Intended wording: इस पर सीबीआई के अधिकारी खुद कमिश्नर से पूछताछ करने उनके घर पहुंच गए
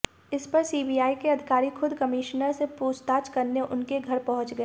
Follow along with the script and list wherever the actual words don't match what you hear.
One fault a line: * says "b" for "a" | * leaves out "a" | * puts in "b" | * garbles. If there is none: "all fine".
all fine